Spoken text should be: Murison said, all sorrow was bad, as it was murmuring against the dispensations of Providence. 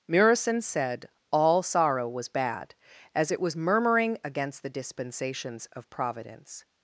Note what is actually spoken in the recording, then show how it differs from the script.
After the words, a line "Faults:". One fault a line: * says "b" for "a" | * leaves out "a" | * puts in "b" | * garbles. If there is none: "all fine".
Murison said, all sorrow was bad, as it was murmuring against the dispensations of Providence.
Faults:
all fine